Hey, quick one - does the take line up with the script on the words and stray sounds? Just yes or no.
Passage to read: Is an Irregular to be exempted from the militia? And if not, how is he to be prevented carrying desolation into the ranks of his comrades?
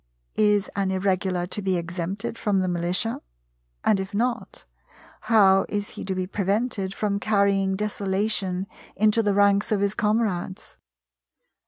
no